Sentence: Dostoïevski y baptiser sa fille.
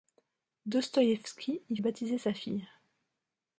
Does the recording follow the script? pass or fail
pass